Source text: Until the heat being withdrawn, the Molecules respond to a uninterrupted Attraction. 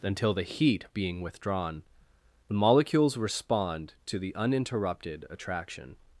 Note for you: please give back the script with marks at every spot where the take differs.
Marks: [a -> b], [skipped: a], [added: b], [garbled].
Until the heat being withdrawn, the Molecules respond to [a -> the] uninterrupted Attraction.